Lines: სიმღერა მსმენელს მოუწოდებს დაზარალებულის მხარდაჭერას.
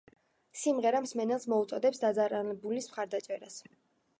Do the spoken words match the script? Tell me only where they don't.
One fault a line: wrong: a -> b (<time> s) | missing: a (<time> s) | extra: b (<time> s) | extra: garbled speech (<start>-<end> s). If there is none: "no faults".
no faults